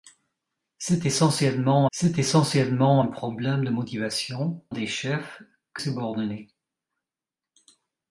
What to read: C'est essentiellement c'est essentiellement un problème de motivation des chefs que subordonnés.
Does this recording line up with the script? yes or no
yes